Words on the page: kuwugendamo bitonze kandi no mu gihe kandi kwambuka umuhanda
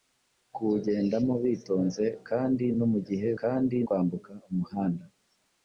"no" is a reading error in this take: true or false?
false